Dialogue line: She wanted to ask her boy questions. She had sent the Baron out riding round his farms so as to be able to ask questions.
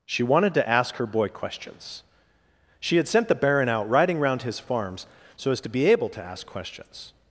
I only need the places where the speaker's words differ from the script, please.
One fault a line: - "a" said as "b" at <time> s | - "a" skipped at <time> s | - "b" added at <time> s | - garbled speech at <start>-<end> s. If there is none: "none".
none